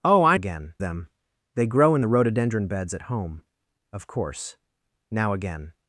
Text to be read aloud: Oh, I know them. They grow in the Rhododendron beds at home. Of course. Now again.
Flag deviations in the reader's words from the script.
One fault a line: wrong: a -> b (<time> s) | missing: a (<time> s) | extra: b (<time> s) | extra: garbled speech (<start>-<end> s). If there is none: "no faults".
wrong: know -> again (0.3 s)